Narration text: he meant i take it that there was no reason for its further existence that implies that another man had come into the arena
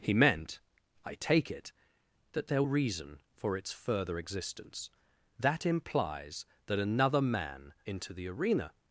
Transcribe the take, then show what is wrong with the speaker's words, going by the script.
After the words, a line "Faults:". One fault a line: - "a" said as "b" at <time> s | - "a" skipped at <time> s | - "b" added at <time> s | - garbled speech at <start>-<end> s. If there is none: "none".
he meant i take it that there reason for its further existence that implies that another man into the arena
Faults:
- "was no" skipped at 2.6 s
- "had come" skipped at 7.7 s